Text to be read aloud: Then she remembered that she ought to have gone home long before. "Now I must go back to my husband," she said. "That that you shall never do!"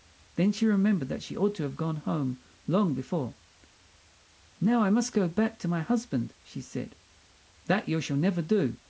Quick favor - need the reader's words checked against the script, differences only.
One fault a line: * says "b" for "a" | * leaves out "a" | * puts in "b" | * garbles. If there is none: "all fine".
* leaves out "that"